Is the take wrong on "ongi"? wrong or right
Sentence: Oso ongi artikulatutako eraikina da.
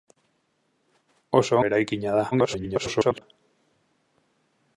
wrong